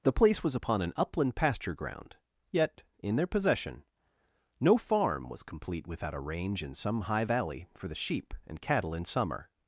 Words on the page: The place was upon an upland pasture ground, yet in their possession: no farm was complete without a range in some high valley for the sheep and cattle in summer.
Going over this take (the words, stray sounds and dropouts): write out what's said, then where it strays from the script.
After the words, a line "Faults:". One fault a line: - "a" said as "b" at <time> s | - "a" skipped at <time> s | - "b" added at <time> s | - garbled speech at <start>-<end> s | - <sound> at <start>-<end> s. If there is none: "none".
The place was upon an upland pasture ground, yet in their possession: no farm was complete without a range in some high valley for the sheep and cattle in summer.
Faults:
none